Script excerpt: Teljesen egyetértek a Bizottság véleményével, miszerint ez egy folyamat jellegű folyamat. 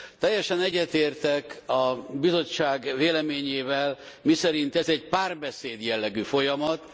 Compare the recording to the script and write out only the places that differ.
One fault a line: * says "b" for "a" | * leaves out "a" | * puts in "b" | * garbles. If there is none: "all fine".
* says "párbeszéd" for "folyamat"